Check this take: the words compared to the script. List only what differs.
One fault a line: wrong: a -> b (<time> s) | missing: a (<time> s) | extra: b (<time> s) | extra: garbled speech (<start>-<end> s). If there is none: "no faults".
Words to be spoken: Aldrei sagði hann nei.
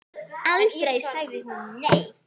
wrong: hann -> hún (1.5 s)